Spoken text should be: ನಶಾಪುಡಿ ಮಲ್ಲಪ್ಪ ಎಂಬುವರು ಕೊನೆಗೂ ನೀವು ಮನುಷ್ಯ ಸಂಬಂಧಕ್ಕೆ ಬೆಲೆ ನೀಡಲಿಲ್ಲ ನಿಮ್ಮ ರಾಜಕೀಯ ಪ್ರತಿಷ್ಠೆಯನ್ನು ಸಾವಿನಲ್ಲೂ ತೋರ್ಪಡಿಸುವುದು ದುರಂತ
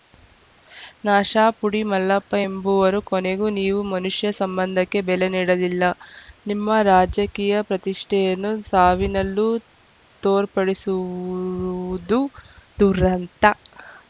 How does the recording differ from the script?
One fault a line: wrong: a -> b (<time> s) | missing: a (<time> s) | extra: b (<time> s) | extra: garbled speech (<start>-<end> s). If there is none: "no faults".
no faults